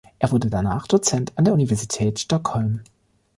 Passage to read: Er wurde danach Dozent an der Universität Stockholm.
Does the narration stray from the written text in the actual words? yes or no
no